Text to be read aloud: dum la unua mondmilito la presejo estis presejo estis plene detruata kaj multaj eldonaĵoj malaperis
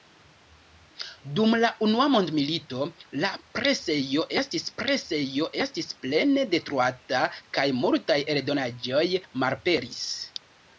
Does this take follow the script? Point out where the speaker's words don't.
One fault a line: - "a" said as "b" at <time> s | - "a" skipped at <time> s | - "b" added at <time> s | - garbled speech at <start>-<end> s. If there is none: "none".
none